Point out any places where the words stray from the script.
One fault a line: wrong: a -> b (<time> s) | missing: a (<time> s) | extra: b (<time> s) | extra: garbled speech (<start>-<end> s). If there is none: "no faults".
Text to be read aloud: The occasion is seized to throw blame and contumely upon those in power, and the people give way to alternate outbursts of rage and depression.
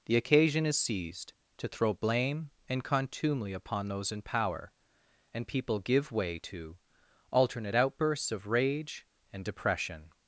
missing: the (5.5 s)